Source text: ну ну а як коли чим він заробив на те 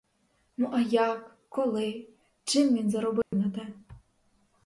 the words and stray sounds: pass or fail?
fail